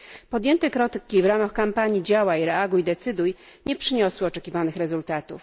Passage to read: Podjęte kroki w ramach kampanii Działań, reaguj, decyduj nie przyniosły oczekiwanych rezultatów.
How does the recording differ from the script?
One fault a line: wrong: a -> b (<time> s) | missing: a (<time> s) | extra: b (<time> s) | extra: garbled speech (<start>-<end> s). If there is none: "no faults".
no faults